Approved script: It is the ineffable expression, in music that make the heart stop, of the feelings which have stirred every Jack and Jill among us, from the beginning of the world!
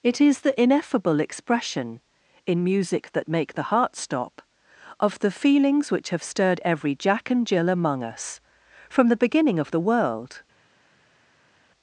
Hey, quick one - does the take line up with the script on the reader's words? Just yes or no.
yes